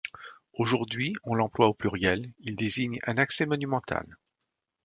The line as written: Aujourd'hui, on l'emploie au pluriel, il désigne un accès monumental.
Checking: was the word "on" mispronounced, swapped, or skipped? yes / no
no